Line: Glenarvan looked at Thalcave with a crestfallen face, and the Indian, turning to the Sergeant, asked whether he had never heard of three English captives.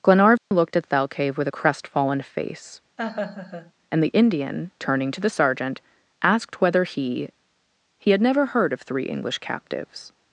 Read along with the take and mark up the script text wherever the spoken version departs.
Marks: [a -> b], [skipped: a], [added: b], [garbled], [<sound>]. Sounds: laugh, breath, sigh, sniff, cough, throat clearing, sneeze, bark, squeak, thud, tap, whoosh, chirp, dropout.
Glenarvan [dropout] looked at Thalcave with a crestfallen face, [laugh] and the Indian, turning to the Sergeant, asked whether he [added: he] had never heard of three English captives.